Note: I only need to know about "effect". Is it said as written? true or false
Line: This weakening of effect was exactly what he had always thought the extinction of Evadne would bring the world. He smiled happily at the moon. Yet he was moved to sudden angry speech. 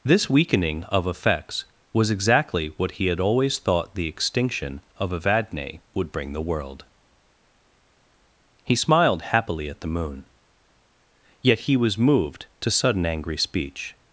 false